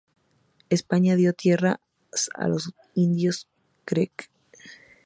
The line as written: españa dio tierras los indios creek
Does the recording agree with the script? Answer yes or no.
no